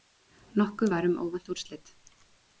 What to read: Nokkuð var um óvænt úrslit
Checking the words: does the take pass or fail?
pass